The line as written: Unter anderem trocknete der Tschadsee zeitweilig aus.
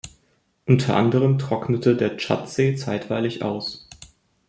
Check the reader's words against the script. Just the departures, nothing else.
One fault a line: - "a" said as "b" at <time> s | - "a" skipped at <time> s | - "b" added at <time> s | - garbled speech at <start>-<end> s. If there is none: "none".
none